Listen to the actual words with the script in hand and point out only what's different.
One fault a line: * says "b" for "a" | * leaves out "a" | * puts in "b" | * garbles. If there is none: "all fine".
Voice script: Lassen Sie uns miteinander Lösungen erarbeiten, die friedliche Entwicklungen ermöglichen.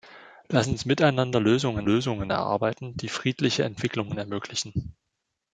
* leaves out "Sie"
* puts in "Lösungen"